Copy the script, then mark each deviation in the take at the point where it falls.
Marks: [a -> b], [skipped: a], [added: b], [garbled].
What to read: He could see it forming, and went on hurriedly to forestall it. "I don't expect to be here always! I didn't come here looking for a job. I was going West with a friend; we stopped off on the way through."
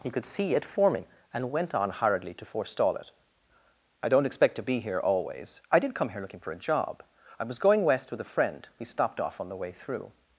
He could see it forming, and went on hurriedly to forestall it. "I don't expect to be here always! I [didn't -> did] come here looking for a job. I was going West with a friend; we stopped off on the way through."